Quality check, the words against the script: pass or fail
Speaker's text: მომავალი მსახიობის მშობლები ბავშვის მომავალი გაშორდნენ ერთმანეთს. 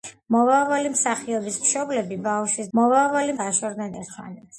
pass